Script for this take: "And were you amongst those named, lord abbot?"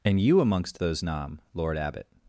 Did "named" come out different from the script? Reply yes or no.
yes